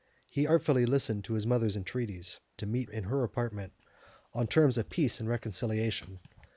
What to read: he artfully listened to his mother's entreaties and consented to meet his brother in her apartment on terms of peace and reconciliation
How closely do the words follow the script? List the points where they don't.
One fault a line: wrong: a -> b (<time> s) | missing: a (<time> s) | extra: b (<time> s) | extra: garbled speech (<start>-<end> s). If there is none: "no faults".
missing: and consented (2.4 s)
missing: his brother (2.9 s)